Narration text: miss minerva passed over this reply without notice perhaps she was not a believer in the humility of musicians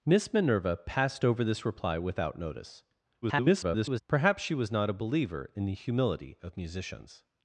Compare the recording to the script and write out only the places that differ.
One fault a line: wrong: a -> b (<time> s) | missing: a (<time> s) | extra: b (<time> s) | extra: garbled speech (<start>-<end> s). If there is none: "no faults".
extra: garbled speech (3.2-4.0 s)